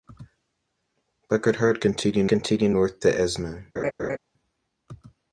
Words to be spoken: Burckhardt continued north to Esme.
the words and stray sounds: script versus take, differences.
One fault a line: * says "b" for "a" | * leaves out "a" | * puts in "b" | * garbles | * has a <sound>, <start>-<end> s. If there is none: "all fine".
* puts in "continued"
* has a laugh, 3.8-4.2 s